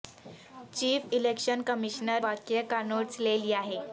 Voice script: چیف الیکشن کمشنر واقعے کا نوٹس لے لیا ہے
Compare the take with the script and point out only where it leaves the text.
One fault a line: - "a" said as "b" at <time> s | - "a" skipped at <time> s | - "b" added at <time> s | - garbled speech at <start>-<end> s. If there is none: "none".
none